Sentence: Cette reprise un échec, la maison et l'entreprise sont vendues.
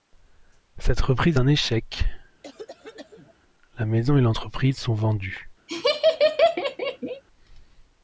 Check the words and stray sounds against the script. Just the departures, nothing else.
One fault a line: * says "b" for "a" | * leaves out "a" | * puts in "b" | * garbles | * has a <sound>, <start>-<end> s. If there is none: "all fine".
* has a cough, 2.4-3.3 s
* has a laugh, 5.7-7.2 s